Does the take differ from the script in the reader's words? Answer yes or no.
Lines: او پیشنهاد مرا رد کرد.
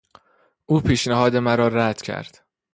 no